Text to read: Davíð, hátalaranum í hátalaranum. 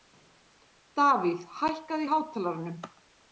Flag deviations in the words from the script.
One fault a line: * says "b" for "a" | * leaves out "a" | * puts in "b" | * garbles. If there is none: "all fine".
* says "hækkaðu" for "hátalaranum"